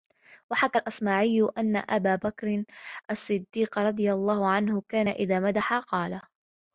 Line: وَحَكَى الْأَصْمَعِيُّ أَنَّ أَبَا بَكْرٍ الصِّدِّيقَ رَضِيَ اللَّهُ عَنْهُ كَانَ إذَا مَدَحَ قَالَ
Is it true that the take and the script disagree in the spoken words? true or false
false